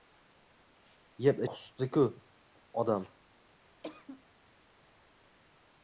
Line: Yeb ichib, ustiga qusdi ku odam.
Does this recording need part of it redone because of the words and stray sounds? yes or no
yes